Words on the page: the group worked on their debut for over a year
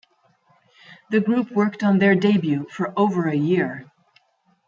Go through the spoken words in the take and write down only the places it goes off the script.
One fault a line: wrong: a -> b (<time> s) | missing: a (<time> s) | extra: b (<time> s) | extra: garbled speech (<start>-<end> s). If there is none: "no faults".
no faults